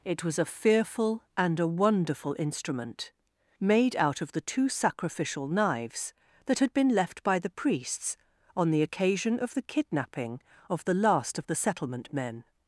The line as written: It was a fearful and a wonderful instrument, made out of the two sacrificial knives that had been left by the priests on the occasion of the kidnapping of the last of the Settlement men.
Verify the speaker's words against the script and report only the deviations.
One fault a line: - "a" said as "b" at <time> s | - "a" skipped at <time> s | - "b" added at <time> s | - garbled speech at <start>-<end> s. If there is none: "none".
none